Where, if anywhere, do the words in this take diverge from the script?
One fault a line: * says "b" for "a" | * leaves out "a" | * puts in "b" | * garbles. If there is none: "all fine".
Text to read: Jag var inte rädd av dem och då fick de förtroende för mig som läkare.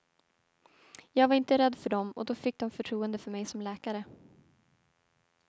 * says "för" for "av"